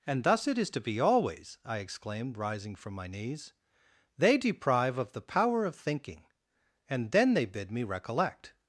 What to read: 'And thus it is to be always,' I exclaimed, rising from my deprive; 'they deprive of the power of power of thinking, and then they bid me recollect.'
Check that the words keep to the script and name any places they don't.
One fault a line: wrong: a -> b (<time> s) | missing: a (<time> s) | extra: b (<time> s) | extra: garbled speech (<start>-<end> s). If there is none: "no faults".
wrong: deprive -> knees (3.0 s)
missing: power of (5.8 s)